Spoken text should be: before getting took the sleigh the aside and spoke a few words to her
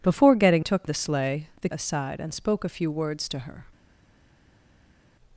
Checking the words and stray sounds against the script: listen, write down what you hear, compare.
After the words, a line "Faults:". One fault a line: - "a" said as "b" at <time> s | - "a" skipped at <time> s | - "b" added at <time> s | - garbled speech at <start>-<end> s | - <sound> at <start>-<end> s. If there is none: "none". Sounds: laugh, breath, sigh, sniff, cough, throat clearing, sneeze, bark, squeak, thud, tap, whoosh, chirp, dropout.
before getting took the sleigh the aside and spoke a few words to her
Faults:
none